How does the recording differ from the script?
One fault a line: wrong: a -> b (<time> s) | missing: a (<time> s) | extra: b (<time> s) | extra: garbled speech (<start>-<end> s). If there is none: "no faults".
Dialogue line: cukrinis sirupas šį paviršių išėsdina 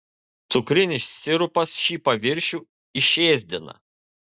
no faults